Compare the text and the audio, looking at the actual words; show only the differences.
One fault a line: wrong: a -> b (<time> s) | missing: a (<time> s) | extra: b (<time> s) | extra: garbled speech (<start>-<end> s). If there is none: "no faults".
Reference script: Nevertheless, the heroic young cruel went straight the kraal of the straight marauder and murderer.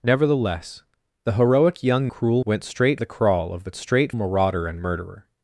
no faults